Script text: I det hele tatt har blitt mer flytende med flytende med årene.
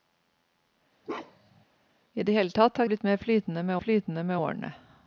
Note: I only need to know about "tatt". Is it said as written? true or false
true